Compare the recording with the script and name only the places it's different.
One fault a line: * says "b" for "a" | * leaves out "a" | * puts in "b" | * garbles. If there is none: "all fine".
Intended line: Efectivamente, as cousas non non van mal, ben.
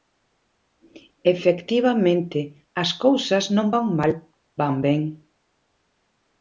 * leaves out "non"
* puts in "van"